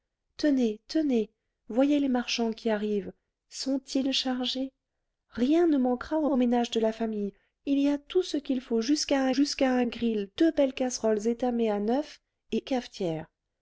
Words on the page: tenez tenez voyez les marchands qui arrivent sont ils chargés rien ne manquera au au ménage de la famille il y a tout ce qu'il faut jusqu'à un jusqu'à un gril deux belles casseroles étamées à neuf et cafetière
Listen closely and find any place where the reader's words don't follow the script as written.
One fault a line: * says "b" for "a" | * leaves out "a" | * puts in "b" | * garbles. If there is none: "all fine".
all fine